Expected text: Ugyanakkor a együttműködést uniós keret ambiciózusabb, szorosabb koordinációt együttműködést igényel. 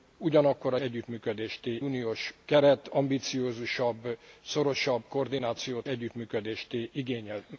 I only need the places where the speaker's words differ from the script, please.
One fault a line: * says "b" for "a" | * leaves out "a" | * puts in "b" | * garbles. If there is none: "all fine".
all fine